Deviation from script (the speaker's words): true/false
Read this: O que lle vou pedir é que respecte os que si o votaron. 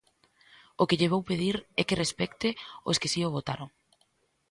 false